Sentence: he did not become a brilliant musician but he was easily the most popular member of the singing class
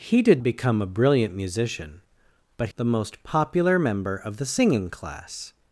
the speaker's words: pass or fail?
fail